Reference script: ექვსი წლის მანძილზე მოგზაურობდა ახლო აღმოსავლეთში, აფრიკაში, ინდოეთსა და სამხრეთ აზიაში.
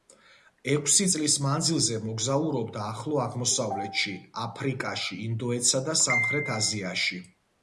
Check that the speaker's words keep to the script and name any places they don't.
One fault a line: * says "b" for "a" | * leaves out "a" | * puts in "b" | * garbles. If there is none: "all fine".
all fine